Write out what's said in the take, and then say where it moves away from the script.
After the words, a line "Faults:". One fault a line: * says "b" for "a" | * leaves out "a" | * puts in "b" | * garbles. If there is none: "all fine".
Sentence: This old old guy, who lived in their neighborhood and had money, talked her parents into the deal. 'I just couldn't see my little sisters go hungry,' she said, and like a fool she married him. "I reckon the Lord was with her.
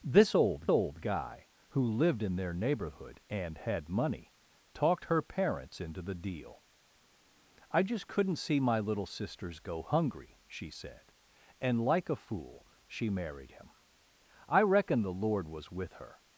This old old guy, who lived in their neighborhood and had money, talked her parents into the deal. 'I just couldn't see my little sisters go hungry,' she said, and like a fool she married him. "I reckon the Lord was with her.
Faults:
all fine